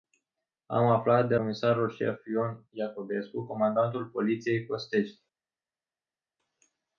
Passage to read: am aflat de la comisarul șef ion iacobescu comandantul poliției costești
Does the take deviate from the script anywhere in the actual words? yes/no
yes